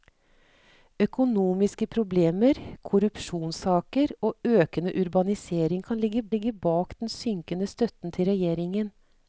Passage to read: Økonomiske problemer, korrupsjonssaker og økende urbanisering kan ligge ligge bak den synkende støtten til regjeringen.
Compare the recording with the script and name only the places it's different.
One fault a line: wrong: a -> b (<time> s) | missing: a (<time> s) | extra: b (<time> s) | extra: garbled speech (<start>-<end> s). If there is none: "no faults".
no faults